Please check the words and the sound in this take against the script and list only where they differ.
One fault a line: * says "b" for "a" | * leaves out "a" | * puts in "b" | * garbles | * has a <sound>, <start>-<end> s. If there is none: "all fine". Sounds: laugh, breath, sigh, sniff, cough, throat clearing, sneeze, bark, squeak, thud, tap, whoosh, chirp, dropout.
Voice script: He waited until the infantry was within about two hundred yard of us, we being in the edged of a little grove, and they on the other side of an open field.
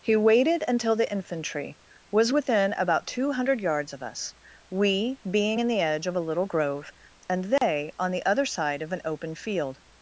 * says "yards" for "yard"
* says "edge" for "edged"
* has a dropout, 7.6-7.6 s